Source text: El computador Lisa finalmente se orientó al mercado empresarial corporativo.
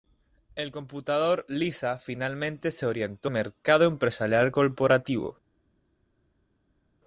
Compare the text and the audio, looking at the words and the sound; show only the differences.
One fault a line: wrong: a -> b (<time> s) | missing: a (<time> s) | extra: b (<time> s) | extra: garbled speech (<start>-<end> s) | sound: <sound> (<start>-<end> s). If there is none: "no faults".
missing: al (3.3 s)